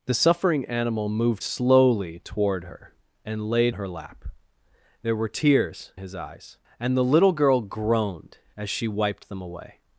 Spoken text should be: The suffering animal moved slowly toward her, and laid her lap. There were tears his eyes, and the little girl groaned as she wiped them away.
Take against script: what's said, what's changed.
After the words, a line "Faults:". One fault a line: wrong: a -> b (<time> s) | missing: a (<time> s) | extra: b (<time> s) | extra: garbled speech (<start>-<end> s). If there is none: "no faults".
The suffering animal moved slowly toward her, and laid her lap. There were tears his eyes, and the little girl groaned as she wiped them away.
Faults:
no faults